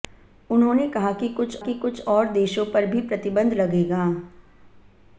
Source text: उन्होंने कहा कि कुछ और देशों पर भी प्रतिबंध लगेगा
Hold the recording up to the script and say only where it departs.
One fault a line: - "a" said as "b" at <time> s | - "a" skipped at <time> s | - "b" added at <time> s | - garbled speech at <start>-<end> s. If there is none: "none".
- "कि कुछ" added at 1.6 s